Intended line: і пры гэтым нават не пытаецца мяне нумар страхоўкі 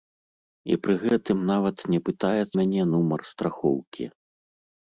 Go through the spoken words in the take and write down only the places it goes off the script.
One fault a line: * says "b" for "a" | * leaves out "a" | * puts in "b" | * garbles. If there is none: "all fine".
all fine